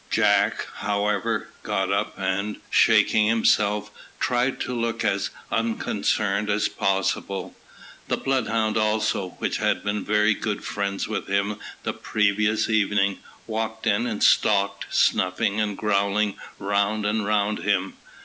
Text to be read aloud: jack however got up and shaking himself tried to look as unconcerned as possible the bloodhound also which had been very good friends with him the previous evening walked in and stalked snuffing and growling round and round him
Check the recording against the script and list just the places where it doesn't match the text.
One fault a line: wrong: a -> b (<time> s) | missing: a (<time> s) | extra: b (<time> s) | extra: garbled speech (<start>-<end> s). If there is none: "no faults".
no faults